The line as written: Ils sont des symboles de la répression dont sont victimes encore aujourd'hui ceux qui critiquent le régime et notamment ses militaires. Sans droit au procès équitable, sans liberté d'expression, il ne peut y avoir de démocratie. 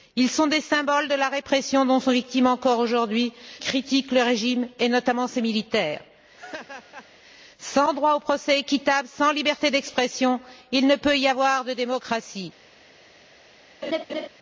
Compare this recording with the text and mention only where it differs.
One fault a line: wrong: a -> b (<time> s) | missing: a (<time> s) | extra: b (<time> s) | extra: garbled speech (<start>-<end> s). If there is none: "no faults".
missing: ceux qui (3.3 s)